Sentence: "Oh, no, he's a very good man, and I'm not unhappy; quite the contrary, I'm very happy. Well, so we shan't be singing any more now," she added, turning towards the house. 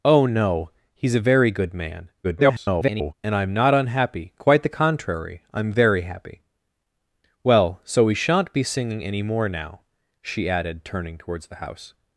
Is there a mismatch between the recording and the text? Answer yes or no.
yes